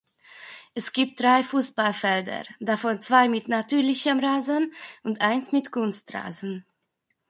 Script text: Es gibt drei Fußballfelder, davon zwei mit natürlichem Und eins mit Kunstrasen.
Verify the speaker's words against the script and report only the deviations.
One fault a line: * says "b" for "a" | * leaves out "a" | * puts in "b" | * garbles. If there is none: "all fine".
* puts in "Rasen"